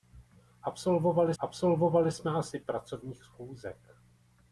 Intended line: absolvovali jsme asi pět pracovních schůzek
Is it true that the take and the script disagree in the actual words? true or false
true